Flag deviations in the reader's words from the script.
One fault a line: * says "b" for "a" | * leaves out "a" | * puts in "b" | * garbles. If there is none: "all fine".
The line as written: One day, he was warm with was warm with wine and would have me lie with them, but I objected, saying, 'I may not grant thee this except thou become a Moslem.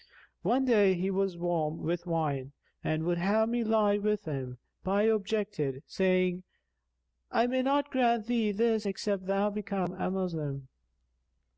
* leaves out "was warm with"
* says "him" for "them"